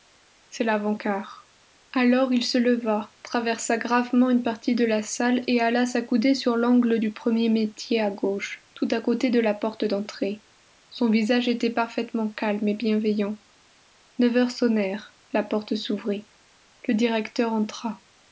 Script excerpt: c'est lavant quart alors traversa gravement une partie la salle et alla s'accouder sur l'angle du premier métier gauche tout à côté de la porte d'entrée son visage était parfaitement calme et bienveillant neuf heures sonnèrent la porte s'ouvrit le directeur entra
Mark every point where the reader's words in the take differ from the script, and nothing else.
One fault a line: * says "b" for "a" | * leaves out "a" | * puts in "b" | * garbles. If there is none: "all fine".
* puts in "il se leva"
* puts in "de"
* puts in "à"